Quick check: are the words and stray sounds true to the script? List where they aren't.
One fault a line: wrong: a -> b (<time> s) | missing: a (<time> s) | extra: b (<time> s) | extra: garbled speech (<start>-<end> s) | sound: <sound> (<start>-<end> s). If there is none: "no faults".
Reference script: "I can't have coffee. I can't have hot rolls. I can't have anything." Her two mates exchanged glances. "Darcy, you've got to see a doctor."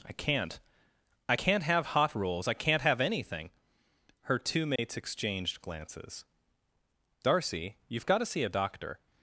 missing: have coffee (0.6 s)
sound: dropout (4.8-4.8 s)